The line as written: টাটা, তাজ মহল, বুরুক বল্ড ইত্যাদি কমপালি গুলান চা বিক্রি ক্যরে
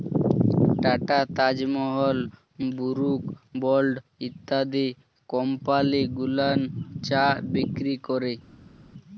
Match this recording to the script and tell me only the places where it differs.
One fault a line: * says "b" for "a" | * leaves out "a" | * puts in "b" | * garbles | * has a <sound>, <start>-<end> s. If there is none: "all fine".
all fine